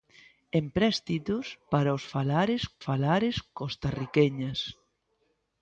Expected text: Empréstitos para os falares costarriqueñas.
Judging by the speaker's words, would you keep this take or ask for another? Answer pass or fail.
fail